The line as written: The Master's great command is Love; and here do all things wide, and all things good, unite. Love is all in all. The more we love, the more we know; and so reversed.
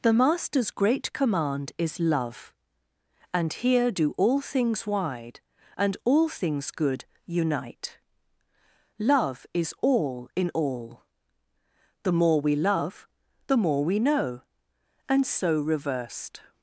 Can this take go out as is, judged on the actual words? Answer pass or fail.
pass